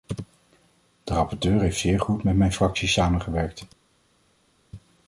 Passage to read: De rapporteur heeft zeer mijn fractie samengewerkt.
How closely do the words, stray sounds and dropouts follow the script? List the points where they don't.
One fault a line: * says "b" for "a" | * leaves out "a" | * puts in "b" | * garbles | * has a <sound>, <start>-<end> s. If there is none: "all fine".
* puts in "goed met"